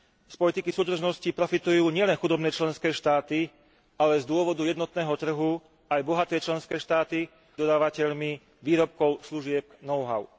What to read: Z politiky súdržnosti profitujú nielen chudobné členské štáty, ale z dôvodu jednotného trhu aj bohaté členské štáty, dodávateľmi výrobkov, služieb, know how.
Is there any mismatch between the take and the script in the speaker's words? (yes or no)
no